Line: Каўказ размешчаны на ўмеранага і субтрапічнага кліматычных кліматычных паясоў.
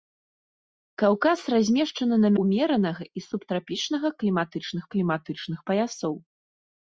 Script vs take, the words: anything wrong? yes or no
no